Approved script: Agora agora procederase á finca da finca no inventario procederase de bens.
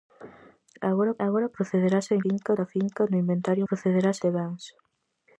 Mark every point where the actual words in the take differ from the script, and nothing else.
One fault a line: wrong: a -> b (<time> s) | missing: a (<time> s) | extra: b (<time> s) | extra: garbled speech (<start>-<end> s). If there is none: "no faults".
no faults